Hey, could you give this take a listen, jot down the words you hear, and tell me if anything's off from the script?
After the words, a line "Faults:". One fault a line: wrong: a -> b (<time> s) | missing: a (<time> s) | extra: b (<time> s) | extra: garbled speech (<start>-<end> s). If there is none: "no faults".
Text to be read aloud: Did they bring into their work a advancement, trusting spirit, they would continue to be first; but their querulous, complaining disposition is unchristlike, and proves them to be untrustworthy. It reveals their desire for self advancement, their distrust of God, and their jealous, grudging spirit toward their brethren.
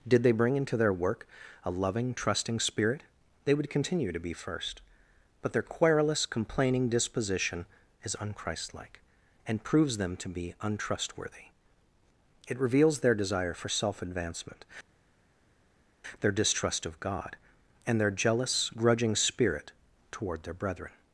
Did they bring into their work a loving, trusting spirit, they would continue to be first; but their querulous, complaining disposition is unchristlike, and proves them to be untrustworthy. It reveals their desire for self advancement, their distrust of God, and their jealous, grudging spirit toward their brethren.
Faults:
wrong: advancement -> loving (1.7 s)